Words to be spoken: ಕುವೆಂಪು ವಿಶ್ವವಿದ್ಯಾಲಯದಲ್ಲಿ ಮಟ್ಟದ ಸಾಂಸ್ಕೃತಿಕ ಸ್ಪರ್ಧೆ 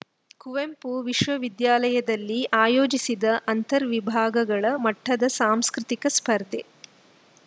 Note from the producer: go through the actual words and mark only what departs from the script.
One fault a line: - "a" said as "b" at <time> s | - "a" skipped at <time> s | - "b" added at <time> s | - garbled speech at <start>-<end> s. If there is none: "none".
- "ಆಯೋಜಿಸಿದ್ದ ಅಂತರ್ ವಿಭಾಗಗಳ" added at 2.6 s